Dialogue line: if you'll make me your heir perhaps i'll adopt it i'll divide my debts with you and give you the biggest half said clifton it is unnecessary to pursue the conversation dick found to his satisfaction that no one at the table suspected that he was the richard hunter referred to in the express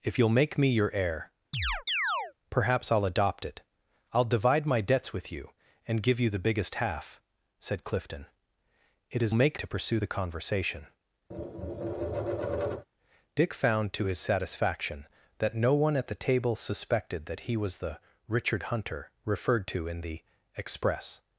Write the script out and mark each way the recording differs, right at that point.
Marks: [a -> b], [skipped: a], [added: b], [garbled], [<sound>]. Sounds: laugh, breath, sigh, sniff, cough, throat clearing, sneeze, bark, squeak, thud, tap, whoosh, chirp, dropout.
if you'll make me your heir [chirp] perhaps i'll adopt it i'll divide my debts with you and give you the biggest half said clifton it is [unnecessary -> make] to pursue the conversation [tap] dick found to his satisfaction that no one at the table suspected that he was the richard hunter referred to in the express